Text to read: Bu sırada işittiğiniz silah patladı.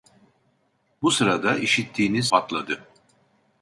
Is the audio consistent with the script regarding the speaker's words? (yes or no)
no